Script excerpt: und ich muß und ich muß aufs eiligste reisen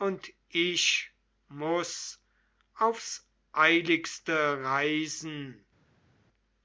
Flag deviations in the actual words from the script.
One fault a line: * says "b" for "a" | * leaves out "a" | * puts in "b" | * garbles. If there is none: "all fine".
* leaves out "und ich muß"